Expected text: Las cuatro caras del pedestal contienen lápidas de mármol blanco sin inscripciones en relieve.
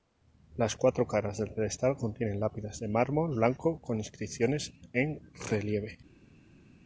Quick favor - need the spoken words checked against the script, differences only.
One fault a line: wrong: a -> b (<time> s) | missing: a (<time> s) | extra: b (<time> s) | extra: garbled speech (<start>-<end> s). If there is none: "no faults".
wrong: sin -> con (3.8 s)